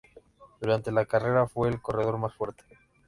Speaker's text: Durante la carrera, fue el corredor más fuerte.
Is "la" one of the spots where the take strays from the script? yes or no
no